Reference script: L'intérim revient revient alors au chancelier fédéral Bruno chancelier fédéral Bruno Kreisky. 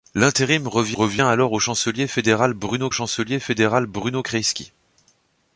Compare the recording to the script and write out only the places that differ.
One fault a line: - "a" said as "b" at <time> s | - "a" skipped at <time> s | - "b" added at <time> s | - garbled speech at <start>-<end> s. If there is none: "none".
none